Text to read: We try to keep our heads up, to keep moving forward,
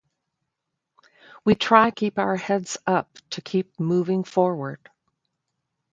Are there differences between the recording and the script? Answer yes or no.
yes